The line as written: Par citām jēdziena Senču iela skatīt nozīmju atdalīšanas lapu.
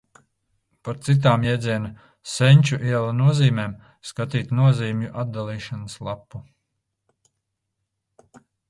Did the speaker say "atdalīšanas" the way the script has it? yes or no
yes